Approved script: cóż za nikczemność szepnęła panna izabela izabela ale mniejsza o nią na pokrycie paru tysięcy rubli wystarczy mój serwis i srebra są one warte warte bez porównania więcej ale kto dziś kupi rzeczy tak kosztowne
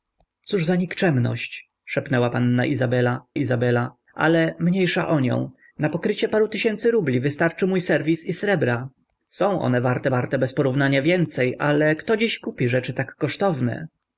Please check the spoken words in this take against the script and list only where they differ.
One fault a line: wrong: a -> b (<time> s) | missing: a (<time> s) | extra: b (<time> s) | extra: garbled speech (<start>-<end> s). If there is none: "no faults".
no faults